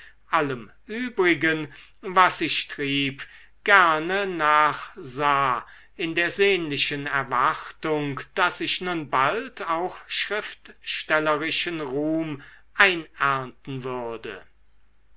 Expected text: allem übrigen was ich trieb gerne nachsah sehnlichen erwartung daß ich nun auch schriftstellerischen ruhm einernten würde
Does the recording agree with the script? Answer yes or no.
no